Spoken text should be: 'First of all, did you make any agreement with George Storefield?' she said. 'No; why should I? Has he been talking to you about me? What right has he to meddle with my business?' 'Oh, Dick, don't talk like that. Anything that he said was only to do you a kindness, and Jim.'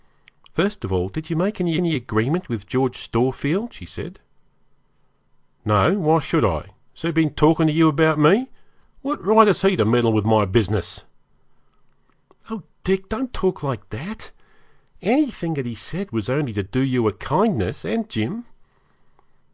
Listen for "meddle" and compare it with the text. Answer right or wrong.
right